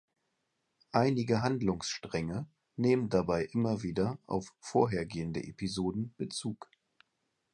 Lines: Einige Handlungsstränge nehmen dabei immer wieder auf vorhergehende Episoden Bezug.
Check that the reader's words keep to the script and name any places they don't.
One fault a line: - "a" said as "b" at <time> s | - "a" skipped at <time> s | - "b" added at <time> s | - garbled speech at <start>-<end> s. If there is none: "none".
none